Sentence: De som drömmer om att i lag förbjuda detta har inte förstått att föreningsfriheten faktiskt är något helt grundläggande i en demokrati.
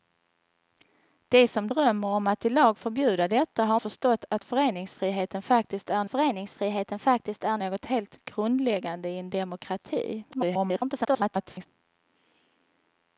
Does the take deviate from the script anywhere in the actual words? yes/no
yes